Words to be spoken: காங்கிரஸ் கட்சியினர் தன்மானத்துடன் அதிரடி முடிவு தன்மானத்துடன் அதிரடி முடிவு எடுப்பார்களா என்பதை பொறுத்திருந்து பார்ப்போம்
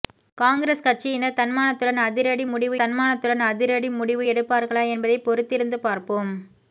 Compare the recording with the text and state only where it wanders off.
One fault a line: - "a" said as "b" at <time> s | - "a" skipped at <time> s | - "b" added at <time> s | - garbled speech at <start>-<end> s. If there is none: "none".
none